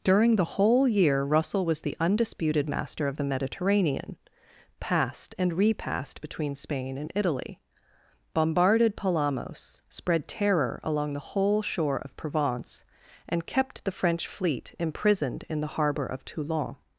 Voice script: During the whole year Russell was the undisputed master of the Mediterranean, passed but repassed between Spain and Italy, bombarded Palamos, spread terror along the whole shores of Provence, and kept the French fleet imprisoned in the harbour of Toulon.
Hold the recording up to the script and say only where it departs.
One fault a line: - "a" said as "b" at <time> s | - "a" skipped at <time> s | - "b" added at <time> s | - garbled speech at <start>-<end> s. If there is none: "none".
- "but" said as "and" at 5.4 s
- "shores" said as "shore" at 11.6 s